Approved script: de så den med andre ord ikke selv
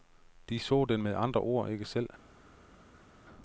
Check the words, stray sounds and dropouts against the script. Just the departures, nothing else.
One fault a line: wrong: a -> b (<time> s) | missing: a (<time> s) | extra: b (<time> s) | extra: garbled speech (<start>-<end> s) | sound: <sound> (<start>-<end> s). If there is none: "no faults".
no faults